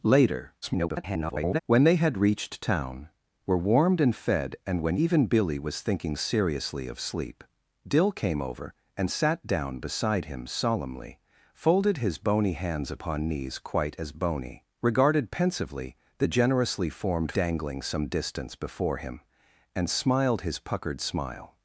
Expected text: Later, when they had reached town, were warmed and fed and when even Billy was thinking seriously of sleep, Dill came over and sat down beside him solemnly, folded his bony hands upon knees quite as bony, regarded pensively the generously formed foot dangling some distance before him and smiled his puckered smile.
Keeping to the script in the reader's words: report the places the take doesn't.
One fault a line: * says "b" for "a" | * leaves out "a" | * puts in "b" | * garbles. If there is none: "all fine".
* garbles
* leaves out "foot"